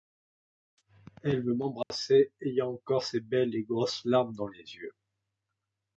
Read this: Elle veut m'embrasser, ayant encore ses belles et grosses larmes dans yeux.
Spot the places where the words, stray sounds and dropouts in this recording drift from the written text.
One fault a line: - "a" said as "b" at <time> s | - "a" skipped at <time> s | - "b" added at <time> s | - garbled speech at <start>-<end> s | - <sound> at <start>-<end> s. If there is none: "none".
- dropout at 1.8-1.9 s
- "les" added at 4.5 s